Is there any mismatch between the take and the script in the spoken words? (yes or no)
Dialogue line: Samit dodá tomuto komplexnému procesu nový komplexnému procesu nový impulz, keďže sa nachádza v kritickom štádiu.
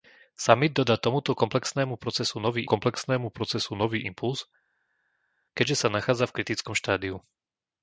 no